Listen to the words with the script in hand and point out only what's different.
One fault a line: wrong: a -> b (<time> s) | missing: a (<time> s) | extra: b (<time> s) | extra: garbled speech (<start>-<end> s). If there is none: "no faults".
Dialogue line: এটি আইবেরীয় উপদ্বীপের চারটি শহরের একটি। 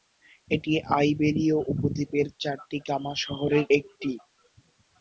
extra: গামা (2.9 s)